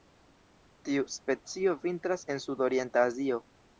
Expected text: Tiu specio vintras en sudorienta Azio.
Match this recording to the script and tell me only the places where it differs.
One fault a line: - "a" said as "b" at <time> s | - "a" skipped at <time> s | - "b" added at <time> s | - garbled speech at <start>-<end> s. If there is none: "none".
none